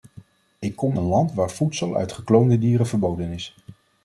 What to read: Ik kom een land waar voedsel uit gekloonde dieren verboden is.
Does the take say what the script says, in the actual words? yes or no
yes